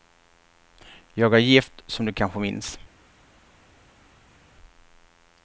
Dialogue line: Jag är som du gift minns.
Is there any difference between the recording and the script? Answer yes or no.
yes